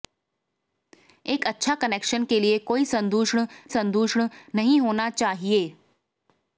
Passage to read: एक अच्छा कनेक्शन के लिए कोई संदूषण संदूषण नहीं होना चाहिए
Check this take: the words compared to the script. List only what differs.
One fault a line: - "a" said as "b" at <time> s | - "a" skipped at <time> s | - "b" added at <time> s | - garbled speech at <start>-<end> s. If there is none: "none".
none